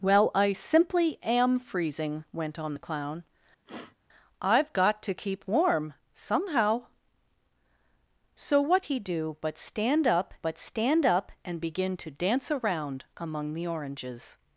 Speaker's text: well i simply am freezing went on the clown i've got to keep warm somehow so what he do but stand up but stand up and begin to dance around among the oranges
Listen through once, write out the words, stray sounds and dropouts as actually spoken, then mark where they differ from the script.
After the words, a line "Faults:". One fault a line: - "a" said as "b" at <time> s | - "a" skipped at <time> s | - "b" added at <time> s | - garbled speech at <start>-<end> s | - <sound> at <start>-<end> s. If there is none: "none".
well i simply am freezing went on the clown i've got to keep warm somehow so what he do but stand up but stand up and begin to dance around among the oranges
Faults:
- sniff at 3.7-4.0 s